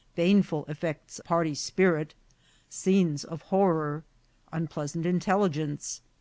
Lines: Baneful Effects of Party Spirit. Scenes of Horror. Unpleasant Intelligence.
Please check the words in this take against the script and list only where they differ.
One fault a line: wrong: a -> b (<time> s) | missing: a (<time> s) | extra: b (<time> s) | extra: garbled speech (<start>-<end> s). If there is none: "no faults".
missing: of (1.2 s)